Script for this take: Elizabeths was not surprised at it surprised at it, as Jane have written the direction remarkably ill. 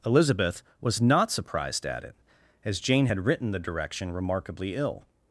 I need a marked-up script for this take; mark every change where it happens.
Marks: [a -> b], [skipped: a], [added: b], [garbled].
[Elizabeths -> Elizabeth] was not surprised at it [skipped: surprised at it,] as Jane [have -> had] written the direction remarkably ill.